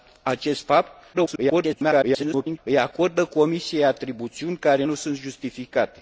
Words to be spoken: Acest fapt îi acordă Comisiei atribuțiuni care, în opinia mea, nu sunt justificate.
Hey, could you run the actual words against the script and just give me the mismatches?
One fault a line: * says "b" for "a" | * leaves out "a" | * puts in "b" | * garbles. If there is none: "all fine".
* garbles
* leaves out "în opinia mea"